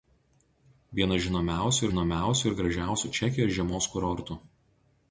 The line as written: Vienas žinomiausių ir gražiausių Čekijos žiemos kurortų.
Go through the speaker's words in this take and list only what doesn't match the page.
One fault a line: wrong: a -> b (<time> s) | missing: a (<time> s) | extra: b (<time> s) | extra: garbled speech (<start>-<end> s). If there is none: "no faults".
extra: žinomiausių (1.9 s)